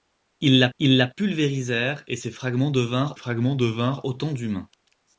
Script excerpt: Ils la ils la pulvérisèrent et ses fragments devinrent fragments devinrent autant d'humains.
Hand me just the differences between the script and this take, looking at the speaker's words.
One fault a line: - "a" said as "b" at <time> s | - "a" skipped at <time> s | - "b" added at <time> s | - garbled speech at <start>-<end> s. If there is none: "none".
none